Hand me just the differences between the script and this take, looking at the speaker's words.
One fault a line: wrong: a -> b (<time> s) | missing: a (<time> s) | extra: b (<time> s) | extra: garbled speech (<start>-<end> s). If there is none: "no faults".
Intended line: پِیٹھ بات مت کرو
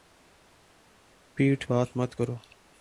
no faults